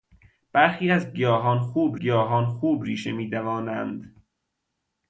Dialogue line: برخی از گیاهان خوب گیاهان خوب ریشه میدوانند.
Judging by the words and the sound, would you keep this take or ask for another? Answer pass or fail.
pass